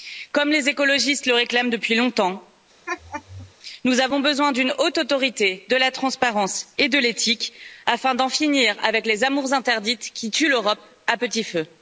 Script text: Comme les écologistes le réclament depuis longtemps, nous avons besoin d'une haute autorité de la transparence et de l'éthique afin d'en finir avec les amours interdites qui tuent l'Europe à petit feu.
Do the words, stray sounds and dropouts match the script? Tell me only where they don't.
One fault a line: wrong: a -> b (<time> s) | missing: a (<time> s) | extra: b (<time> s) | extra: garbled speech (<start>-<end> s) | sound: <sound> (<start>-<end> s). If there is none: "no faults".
sound: laugh (2.9-3.5 s)